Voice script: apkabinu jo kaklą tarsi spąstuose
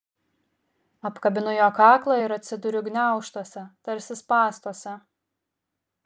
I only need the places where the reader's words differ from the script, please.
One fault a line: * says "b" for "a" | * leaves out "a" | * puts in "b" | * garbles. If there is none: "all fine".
* puts in "ir atsiduriu gniaužtuose"